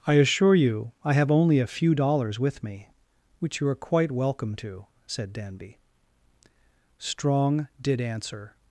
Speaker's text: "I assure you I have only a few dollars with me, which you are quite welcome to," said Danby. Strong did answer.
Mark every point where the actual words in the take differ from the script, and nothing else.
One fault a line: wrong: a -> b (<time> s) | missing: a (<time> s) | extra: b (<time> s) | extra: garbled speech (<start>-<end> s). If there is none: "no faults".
no faults